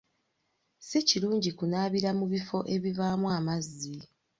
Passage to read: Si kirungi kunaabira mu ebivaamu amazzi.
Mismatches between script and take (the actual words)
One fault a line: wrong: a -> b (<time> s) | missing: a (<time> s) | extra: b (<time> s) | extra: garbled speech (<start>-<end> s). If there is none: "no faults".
extra: bifo (2.3 s)